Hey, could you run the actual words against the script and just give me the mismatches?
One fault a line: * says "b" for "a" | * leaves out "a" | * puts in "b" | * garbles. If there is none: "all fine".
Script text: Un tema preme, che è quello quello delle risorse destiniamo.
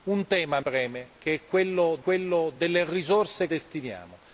all fine